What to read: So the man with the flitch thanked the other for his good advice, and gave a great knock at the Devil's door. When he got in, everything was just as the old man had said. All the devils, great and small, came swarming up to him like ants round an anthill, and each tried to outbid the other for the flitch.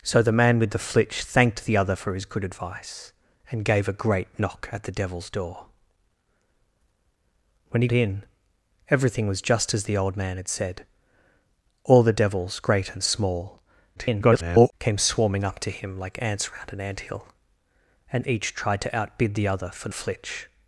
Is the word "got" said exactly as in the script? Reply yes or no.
no